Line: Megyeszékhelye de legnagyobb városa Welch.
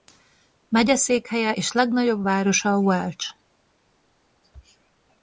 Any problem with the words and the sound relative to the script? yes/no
yes